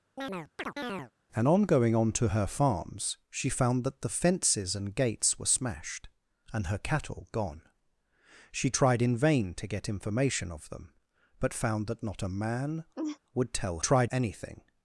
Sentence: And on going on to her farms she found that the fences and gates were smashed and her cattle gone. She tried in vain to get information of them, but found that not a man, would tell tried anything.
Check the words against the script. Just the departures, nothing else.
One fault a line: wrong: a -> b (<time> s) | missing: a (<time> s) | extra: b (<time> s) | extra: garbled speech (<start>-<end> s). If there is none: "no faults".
no faults